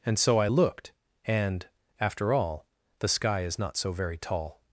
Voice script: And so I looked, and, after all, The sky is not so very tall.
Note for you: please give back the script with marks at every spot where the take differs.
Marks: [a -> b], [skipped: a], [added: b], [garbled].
And so I looked, and, after all, The sky is not so very tall.